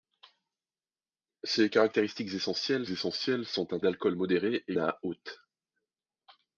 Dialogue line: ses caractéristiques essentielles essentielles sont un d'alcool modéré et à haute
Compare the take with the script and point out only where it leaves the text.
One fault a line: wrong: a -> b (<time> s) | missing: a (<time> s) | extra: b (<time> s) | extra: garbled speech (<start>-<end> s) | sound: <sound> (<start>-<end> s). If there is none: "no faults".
no faults